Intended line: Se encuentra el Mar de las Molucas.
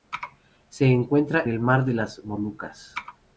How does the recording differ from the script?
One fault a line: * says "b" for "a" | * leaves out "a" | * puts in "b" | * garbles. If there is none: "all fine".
all fine